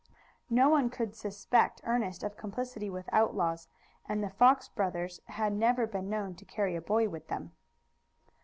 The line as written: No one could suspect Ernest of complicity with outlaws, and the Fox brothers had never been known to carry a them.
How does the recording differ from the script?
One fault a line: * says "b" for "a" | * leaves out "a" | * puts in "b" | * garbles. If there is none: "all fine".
* puts in "boy with"